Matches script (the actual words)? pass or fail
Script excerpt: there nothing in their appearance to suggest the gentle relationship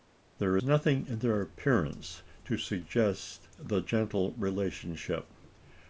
pass